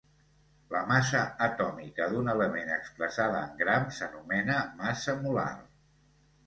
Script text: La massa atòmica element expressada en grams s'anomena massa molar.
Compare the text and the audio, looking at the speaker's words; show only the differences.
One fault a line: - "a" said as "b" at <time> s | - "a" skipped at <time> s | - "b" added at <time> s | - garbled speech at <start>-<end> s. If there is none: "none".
- "d'un" added at 2.1 s